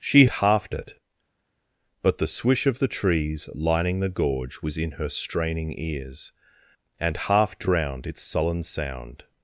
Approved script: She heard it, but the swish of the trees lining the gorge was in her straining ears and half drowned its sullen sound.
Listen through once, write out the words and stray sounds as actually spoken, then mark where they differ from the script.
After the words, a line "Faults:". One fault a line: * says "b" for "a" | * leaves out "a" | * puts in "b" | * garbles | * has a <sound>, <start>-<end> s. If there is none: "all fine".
She half it, but the swish of the trees lining the gorge was in her straining ears and half drowned its sullen sound.
Faults:
* says "half" for "heard"